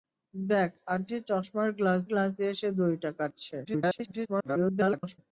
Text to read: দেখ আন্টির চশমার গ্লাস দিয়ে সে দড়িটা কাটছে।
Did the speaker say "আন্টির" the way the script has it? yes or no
yes